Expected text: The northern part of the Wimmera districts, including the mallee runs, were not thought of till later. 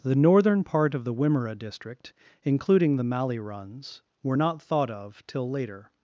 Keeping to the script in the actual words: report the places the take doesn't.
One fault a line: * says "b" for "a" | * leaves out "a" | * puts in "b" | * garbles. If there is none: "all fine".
* says "district" for "districts"